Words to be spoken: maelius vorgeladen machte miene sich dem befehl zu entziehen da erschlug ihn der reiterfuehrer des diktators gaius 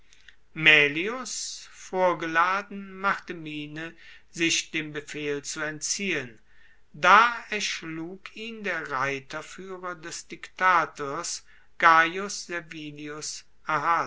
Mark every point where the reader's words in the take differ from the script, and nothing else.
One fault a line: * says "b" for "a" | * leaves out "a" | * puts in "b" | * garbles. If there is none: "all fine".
all fine